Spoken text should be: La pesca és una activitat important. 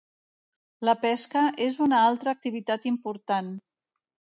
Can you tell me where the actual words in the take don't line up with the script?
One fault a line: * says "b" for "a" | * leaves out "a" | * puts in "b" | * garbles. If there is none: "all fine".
* puts in "altra"